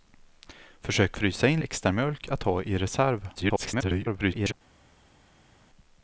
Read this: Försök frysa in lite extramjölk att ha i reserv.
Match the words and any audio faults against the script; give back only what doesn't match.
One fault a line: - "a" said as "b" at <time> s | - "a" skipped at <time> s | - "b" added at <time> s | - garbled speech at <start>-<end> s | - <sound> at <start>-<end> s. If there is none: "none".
- "lite" skipped at 1.6 s
- garbled speech at 3.4-4.5 s